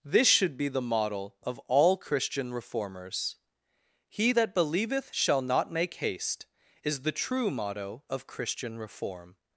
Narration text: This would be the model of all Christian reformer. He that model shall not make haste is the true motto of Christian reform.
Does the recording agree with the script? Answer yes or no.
no